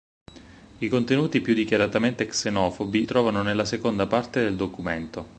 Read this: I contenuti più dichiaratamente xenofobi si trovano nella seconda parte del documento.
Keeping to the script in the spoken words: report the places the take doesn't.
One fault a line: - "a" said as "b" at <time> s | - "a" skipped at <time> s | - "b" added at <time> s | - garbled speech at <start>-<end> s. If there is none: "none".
- "si" skipped at 3.0 s